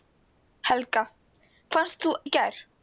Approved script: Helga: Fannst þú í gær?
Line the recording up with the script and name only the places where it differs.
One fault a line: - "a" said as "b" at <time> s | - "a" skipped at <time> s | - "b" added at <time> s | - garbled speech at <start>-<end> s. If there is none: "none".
none